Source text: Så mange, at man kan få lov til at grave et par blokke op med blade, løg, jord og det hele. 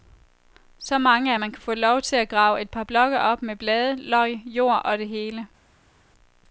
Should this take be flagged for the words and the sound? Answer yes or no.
no